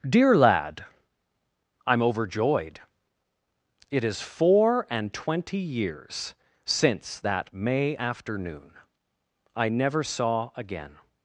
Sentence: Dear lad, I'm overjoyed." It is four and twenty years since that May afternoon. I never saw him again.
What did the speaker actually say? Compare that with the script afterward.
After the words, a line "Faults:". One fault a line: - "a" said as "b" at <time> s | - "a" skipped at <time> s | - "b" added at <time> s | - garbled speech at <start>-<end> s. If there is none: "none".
Dear lad, I'm overjoyed." It is four and twenty years since that May afternoon. I never saw again.
Faults:
- "him" skipped at 10.5 s